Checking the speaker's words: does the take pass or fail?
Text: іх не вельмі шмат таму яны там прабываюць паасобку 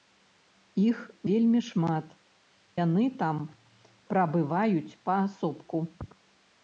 fail